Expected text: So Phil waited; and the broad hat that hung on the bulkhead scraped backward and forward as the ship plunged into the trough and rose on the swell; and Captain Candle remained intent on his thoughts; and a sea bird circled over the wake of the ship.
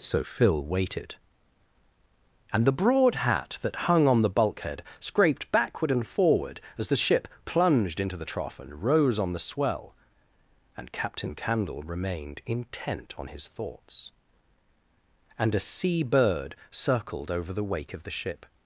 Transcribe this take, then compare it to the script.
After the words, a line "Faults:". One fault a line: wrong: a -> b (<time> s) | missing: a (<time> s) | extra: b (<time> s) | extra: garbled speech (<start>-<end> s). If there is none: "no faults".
So Phil waited; and the broad hat that hung on the bulkhead scraped backward and forward as the ship plunged into the trough and rose on the swell; and Captain Candle remained intent on his thoughts; and a sea bird circled over the wake of the ship.
Faults:
no faults